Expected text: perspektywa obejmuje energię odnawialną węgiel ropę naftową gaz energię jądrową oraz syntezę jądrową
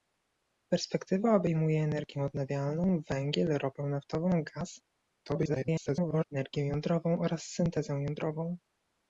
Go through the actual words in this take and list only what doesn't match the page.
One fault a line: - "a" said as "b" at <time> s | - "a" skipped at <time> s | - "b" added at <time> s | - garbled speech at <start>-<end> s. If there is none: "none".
- garbled speech at 5.2-6.2 s